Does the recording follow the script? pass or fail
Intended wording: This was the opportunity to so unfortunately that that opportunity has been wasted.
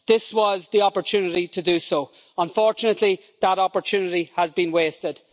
fail